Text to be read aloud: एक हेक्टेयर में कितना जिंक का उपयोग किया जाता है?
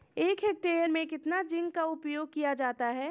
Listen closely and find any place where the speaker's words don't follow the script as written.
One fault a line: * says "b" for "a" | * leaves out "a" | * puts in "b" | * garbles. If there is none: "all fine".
all fine